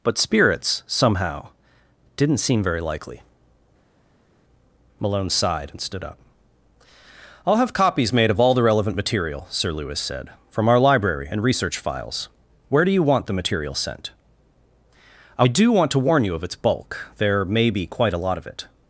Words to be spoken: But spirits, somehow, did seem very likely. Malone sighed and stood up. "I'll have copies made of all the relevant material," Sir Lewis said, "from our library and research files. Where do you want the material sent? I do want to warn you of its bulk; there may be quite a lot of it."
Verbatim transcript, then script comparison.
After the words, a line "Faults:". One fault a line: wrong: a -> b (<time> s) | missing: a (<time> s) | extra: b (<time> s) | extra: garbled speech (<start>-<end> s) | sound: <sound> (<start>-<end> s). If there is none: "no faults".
But spirits, somehow, didn't seem very likely. Malone sighed and stood up. "I'll have copies made of all the relevant material," Sir Lewis said, "from our library and research files. Where do you want the material sent? I do want to warn you of its bulk; there may be quite a lot of it."
Faults:
wrong: did -> didn't (2.2 s)